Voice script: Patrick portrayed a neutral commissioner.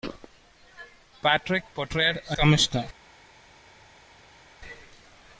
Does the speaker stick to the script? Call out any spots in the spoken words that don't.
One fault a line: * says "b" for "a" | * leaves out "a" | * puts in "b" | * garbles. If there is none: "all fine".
* leaves out "neutral"